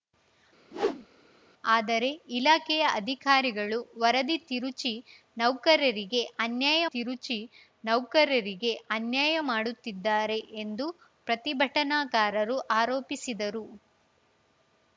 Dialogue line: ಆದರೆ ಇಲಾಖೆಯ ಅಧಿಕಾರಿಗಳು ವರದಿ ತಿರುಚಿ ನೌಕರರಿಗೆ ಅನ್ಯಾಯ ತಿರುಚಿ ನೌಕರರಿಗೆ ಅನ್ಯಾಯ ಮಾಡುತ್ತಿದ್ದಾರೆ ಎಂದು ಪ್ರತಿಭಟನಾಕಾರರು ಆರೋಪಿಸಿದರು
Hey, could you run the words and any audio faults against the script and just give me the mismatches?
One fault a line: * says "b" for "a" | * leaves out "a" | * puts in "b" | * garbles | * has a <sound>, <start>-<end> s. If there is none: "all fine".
* has a whoosh, 0.7-1.1 s